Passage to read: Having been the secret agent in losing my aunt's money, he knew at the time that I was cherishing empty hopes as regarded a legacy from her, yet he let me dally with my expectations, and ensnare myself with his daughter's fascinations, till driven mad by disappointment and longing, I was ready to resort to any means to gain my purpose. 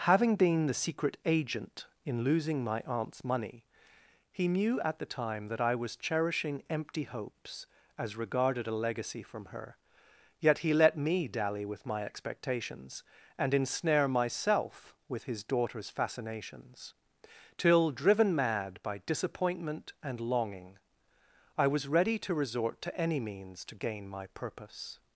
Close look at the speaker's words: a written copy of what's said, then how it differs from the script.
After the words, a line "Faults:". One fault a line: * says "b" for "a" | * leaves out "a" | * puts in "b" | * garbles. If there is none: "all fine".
Having been the secret agent in losing my aunt's money, he knew at the time that I was cherishing empty hopes as regarded a legacy from her, yet he let me dally with my expectations, and ensnare myself with his daughter's fascinations, till driven mad by disappointment and longing, I was ready to resort to any means to gain my purpose.
Faults:
all fine